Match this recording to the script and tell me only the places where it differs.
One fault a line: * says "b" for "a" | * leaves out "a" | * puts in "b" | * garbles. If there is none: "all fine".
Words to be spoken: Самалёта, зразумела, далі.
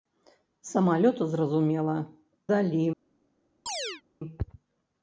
all fine